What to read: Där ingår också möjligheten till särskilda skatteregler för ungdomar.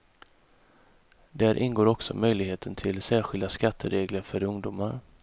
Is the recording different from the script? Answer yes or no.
no